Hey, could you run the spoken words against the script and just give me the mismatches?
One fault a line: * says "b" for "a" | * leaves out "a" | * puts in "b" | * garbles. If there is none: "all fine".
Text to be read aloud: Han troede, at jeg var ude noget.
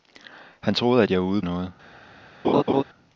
all fine